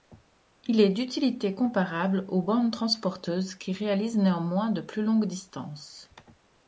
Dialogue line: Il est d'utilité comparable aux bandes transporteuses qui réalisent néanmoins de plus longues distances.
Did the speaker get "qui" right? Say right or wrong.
right